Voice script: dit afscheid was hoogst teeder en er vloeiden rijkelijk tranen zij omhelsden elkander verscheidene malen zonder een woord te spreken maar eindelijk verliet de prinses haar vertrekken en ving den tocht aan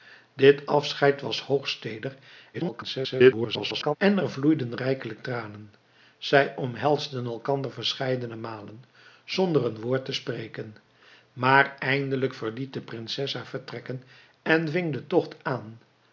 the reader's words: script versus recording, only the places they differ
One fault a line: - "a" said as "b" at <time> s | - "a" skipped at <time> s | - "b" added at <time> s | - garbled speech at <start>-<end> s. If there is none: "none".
- garbled speech at 2.5-4.0 s